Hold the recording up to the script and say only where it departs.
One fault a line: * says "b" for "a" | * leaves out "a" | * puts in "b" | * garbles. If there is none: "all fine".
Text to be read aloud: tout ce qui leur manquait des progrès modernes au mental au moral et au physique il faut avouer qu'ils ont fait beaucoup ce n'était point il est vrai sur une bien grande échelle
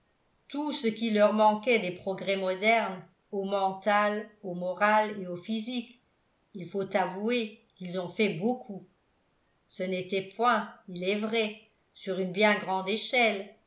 all fine